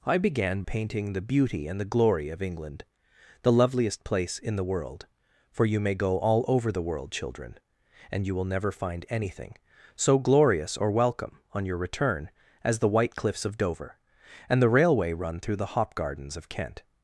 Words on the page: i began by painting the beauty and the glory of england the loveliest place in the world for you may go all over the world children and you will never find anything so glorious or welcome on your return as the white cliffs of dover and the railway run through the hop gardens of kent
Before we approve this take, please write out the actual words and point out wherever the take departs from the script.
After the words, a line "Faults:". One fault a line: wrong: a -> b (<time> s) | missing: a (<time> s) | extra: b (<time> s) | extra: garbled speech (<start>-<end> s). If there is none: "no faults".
i began painting the beauty and the glory of england the loveliest place in the world for you may go all over the world children and you will never find anything so glorious or welcome on your return as the white cliffs of dover and the railway run through the hop gardens of kent
Faults:
missing: by (0.6 s)